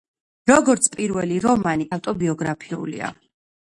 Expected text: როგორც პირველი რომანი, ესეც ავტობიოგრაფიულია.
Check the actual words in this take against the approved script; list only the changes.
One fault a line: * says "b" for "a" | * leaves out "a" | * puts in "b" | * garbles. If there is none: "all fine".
* leaves out "ესეც"